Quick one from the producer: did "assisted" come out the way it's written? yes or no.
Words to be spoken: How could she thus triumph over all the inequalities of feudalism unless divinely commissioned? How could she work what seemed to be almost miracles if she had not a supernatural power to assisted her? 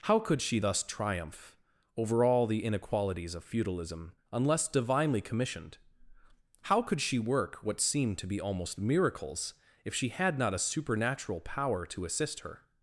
no